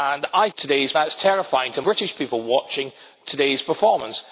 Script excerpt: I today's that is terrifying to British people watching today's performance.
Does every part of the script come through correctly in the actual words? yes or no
yes